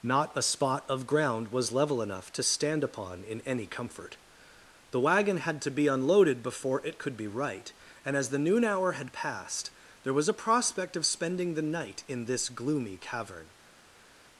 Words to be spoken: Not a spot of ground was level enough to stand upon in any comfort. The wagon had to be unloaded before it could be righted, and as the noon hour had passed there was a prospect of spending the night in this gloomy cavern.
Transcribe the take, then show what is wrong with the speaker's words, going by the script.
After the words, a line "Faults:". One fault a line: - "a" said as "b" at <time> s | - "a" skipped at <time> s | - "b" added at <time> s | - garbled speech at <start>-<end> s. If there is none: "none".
Not a spot of ground was level enough to stand upon in any comfort. The wagon had to be unloaded before it could be right, and as the noon hour had passed there was a prospect of spending the night in this gloomy cavern.
Faults:
- "righted" said as "right" at 7.3 s